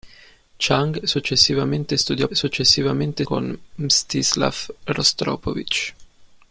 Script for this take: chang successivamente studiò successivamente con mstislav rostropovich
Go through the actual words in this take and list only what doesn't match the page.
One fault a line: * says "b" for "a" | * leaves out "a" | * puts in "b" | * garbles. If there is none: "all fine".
all fine